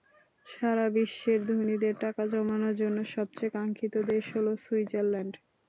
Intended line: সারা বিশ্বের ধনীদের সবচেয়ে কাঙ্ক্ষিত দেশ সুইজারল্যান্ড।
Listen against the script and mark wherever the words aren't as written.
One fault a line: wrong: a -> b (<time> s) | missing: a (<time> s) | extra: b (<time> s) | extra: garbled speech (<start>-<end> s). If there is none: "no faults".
extra: টাকা জমানোর জন্য (2.0 s)
extra: হলো (4.3 s)